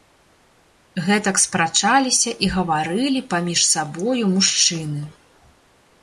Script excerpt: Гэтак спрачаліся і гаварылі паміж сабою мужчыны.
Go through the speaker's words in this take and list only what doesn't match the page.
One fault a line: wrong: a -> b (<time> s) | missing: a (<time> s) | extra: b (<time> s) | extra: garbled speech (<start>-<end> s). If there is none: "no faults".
no faults